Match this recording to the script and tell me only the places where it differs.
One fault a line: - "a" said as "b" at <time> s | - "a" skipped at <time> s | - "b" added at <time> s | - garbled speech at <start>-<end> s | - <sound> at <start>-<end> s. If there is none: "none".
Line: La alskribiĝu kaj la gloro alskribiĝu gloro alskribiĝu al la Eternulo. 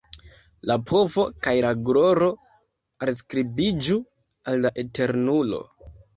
- "alskribiĝu" said as "povo" at 0.9 s
- "gloro alskribiĝu" skipped at 4.0 s